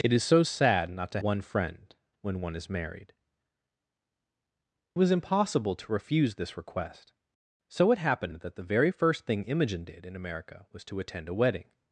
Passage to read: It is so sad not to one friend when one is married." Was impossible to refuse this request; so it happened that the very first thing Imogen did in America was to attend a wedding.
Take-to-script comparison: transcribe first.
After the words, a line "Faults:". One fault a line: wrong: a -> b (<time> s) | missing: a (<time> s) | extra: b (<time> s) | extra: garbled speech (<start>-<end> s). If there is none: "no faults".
It is so sad not to one friend when one is married." Was impossible to refuse this request; so it happened that the very first thing Imogen did in America was to attend a wedding.
Faults:
no faults